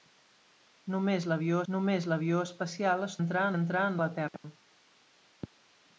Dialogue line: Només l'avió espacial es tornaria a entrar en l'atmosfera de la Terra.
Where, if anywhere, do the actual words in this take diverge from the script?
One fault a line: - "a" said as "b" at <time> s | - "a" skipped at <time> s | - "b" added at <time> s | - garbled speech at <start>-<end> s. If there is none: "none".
- "només l'avió" added at 1.7 s
- "tornaria" said as "entrar" at 3.2 s
- "l'atmosfera" skipped at 4.0 s